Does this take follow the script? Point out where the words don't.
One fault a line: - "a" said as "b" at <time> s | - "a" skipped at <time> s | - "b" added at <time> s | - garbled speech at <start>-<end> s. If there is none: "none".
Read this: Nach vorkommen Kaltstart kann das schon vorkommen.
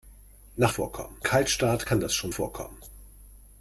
none